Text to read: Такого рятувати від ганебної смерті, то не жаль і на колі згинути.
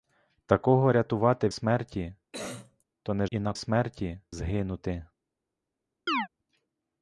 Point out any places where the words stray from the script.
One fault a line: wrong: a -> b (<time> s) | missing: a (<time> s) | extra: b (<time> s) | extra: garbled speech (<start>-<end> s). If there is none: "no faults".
missing: від ганебної (1.5 s)
missing: жаль (3.3 s)
wrong: колі -> смерті (3.6 s)